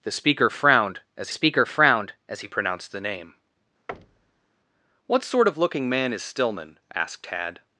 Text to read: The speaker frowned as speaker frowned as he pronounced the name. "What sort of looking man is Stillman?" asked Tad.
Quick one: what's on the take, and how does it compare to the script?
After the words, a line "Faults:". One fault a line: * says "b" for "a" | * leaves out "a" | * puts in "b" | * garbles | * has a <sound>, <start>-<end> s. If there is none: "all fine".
The speaker frowned as speaker frowned as he pronounced the name. "What sort of looking man is Stillman?" asked Tad.
Faults:
* has a thud, 3.9-4.5 s